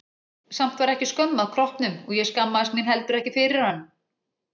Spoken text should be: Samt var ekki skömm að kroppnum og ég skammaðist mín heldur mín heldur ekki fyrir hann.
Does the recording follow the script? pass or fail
fail